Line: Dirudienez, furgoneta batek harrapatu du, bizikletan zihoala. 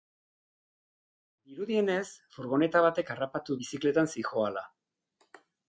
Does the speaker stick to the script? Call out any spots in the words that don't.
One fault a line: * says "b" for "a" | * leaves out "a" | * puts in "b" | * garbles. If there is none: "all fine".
* leaves out "du"